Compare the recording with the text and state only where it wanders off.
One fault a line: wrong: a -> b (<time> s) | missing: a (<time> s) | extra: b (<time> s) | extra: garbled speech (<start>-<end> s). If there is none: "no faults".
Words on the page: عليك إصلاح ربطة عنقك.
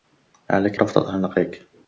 missing: إصلاح (0.8 s)